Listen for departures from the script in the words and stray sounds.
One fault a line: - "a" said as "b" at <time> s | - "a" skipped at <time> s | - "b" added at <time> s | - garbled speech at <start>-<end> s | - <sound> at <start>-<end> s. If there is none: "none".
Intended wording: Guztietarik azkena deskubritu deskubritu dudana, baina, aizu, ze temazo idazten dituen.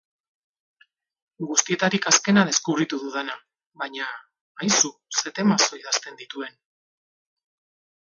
- "deskubritu" skipped at 3.0 s